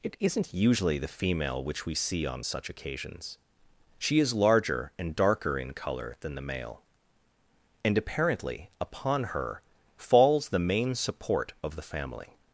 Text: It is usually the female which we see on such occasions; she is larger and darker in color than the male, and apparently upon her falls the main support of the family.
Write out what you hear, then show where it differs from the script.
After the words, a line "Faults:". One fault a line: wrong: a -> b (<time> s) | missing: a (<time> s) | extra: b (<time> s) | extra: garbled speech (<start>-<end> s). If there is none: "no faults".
It isn't usually the female which we see on such occasions; she is larger and darker in color than the male, and apparently upon her falls the main support of the family.
Faults:
wrong: is -> isn't (0.2 s)